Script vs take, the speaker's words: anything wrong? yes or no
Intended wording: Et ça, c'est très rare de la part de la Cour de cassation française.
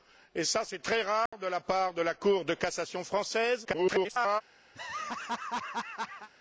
yes